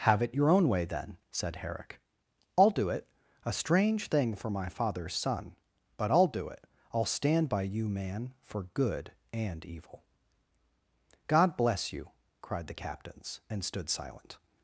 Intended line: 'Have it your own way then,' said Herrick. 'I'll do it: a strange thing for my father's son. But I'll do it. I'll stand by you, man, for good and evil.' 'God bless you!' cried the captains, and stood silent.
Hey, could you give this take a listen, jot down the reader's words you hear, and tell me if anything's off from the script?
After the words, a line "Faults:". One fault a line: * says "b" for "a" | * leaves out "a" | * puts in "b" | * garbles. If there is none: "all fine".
'Have it your own way then,' said Herrick. 'I'll do it: a strange thing for my father's son. But I'll do it. I'll stand by you, man, for good and evil.' 'God bless you!' cried the captains, and stood silent.
Faults:
all fine